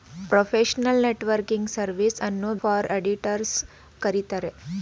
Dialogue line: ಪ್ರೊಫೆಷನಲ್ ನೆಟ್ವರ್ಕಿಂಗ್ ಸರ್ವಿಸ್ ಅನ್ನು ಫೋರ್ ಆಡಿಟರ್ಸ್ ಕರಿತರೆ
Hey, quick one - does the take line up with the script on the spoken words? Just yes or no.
yes